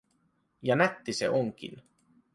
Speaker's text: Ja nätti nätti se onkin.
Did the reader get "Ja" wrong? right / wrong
right